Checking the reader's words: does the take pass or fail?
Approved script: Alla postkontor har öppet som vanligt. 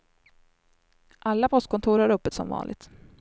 pass